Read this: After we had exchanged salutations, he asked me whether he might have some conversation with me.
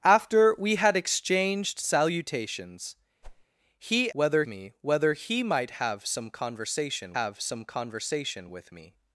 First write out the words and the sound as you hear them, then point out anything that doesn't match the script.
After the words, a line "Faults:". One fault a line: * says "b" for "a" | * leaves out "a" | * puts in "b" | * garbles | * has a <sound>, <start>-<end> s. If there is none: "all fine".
After we had exchanged salutations, he whether me whether he might have some conversation have some conversation with me.
Faults:
* has a whoosh, 3.2-3.5 s
* says "whether" for "asked"
* puts in "have some conversation"